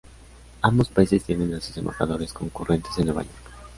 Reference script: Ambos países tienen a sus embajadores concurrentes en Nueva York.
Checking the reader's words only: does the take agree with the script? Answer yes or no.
yes